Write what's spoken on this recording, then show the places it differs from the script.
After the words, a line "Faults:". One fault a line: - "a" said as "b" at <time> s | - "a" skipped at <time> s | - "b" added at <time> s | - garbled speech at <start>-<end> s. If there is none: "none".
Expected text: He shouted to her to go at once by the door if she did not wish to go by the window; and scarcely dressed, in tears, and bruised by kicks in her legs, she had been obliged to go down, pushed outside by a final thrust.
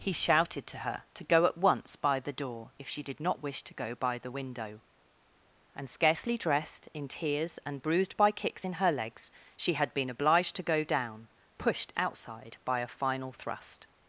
He shouted to her to go at once by the door if she did not wish to go by the window; and scarcely dressed, in tears, and bruised by kicks in her legs, she had been obliged to go down, pushed outside by a final thrust.
Faults:
none